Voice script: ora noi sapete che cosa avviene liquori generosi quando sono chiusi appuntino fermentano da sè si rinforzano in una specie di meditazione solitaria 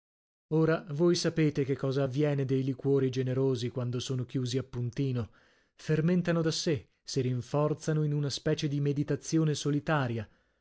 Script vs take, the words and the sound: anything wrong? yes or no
yes